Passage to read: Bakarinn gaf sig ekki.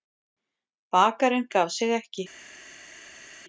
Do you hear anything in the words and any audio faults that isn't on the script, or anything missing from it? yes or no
no